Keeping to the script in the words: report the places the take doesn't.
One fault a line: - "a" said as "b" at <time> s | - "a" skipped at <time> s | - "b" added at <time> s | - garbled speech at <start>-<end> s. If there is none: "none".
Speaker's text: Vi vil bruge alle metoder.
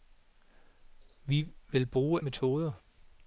- "alle" skipped at 2.2 s